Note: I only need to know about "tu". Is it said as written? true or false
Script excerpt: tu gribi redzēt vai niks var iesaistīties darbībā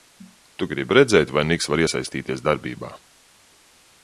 true